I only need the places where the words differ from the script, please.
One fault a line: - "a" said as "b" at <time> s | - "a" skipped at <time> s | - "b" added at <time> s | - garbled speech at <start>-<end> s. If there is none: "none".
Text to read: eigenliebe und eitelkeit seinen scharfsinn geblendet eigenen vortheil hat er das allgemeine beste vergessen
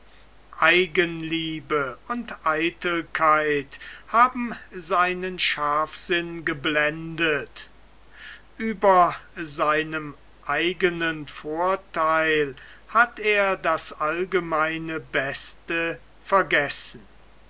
- "haben" added at 4.1 s
- "über seinem" added at 8.6 s